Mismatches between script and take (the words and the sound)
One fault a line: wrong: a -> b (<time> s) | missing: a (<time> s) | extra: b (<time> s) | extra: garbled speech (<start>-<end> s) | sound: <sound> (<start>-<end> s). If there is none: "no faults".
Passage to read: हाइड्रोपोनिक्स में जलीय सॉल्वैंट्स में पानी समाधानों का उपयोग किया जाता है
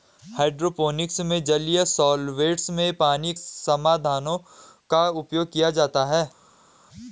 no faults